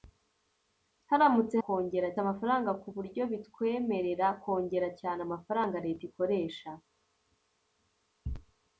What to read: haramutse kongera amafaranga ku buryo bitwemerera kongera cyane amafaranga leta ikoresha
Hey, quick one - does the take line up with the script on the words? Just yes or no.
yes